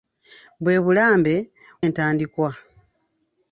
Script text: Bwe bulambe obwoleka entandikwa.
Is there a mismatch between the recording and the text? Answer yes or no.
yes